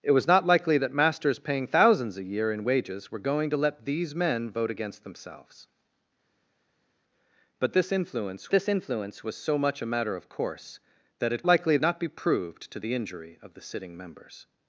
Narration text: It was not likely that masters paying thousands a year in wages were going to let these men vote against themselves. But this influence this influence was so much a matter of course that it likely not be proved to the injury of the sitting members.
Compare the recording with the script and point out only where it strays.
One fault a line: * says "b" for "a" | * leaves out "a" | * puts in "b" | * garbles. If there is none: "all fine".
all fine